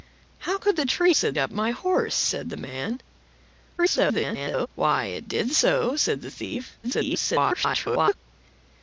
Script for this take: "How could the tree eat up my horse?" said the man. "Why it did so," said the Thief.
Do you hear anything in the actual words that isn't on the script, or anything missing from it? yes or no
yes